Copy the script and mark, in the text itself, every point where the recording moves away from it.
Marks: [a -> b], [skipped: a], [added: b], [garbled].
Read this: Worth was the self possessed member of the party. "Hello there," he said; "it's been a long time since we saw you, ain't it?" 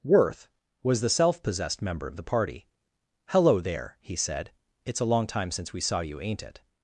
Worth was the self possessed member of the party. "Hello there," he said; "it's [skipped: been] a long time since we saw you, ain't it?"